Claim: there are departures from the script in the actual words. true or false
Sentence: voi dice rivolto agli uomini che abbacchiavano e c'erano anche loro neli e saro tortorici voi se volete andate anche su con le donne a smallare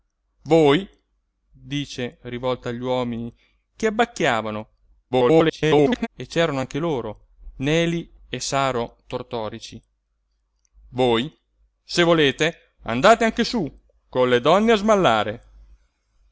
true